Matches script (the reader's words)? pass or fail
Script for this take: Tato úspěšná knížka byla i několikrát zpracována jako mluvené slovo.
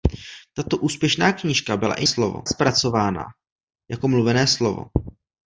fail